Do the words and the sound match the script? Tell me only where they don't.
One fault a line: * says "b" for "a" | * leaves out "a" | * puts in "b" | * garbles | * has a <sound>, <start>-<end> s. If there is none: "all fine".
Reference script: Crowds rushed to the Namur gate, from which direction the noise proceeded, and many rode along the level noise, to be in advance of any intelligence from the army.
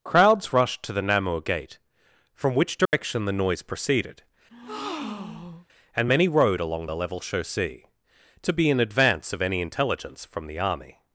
* has a dropout, 2.9-2.9 s
* has a breath, 4.5-5.7 s
* says "chaussee" for "noise"